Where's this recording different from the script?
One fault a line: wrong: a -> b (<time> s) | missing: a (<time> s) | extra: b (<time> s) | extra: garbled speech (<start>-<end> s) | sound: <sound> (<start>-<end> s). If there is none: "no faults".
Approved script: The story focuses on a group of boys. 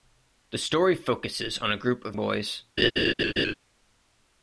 sound: laugh (2.8-3.5 s)